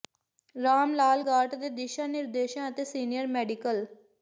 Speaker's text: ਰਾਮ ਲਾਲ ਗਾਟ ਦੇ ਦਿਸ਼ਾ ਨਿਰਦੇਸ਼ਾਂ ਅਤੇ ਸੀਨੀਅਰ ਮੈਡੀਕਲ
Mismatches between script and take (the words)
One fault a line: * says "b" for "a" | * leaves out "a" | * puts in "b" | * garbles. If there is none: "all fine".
all fine